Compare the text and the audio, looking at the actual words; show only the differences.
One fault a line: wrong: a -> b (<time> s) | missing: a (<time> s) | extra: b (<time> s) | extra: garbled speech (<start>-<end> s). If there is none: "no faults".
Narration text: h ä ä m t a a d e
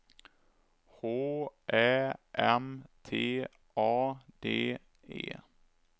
missing: ä (2.1 s)
missing: a (4.2 s)